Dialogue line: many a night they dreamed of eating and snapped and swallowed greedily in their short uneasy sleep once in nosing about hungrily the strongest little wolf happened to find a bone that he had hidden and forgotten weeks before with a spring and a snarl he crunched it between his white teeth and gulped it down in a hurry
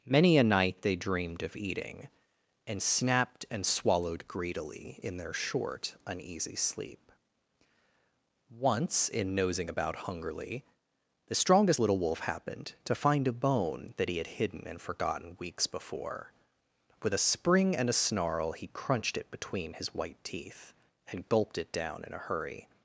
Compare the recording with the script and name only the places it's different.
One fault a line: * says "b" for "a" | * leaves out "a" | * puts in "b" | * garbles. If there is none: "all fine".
all fine